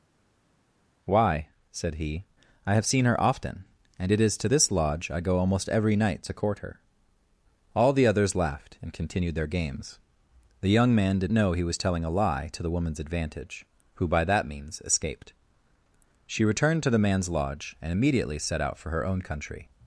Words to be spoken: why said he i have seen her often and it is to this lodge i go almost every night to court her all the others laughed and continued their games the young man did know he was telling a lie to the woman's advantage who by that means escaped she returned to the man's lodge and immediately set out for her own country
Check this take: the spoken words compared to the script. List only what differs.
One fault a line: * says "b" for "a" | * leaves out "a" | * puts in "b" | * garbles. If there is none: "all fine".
all fine